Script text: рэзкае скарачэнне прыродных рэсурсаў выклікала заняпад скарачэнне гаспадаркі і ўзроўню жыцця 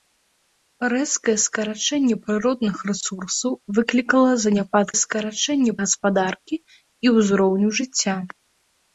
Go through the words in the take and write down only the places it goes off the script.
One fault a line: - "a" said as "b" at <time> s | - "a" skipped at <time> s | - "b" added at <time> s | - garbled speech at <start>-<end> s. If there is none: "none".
none